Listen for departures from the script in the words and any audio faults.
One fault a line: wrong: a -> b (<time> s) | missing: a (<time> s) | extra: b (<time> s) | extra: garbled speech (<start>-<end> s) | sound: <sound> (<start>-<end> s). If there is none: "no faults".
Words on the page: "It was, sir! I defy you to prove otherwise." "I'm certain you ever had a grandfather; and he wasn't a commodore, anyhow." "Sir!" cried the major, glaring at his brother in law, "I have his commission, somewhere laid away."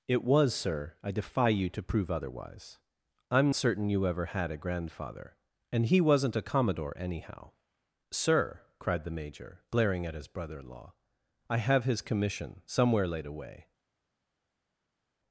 no faults